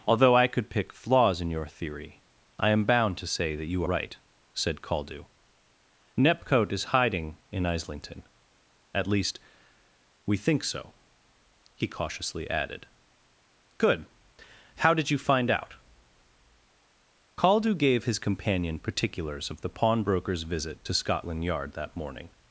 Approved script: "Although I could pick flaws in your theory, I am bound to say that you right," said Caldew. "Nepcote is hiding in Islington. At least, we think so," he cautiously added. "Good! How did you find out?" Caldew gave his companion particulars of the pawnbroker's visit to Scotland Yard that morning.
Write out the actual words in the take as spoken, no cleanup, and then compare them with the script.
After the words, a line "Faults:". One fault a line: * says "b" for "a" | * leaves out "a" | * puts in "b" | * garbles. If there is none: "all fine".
"Although I could pick flaws in your theory, I am bound to say that you right," said Caldew. "Nepcote is hiding in Islington. At least, we think so," he cautiously added. "Good! How did you find out?" Caldew gave his companion particulars of the pawnbroker's visit to Scotland Yard that morning.
Faults:
all fine